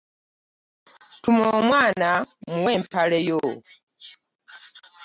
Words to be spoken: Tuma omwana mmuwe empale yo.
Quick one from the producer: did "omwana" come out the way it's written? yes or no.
yes